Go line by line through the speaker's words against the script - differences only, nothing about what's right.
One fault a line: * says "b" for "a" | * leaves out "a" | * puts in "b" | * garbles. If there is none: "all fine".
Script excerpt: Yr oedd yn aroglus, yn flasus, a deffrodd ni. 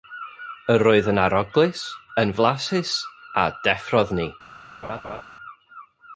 all fine